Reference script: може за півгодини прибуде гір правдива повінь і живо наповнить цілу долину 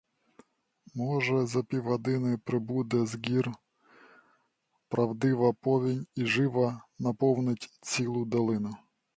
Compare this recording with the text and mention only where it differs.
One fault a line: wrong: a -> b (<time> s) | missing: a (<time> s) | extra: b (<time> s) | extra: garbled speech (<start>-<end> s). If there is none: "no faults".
extra: з (3.0 s)